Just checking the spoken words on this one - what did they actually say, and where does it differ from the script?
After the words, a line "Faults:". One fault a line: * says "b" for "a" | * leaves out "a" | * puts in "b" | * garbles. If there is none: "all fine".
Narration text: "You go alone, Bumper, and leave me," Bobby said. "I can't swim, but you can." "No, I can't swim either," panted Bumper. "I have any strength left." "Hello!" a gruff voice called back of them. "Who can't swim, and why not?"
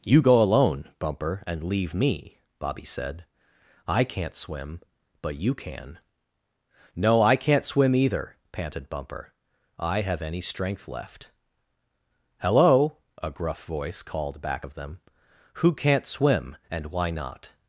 "You go alone, Bumper, and leave me," Bobby said. "I can't swim, but you can." "No, I can't swim either," panted Bumper. "I have any strength left." "Hello!" a gruff voice called back of them. "Who can't swim, and why not?"
Faults:
all fine